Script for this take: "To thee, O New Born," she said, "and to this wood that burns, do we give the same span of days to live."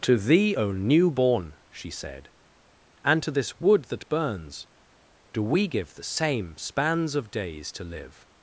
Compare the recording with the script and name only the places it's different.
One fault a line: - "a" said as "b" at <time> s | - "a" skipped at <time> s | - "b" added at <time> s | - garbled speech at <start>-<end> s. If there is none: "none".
- "span" said as "spans" at 6.6 s